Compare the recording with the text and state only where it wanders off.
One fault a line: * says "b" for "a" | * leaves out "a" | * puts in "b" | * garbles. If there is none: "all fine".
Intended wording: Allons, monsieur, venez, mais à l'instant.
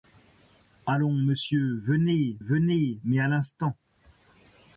* puts in "venez"